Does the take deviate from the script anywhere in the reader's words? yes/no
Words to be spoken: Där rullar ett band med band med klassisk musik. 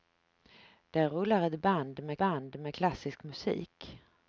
no